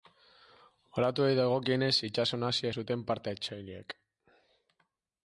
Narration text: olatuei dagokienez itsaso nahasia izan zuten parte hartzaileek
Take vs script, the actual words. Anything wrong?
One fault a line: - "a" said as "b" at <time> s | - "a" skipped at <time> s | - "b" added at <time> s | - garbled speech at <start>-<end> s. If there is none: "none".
- "izan" skipped at 2.7 s